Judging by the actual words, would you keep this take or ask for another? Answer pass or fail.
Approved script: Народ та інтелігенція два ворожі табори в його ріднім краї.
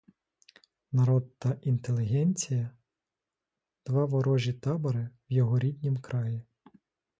pass